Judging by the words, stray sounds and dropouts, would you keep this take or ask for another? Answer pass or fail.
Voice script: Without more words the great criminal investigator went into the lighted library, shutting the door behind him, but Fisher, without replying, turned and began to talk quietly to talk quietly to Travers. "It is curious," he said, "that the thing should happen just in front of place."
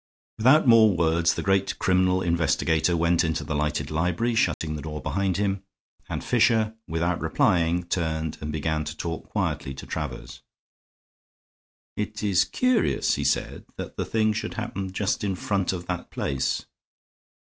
fail